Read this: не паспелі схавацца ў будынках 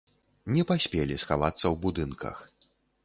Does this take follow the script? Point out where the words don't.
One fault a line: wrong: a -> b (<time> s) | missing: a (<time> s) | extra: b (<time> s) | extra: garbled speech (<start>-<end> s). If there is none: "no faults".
no faults